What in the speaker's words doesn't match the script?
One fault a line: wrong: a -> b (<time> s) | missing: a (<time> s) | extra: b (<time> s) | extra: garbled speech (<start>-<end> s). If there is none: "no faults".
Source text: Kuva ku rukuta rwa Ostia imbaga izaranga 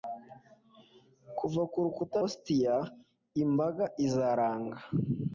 missing: rwa (2.2 s)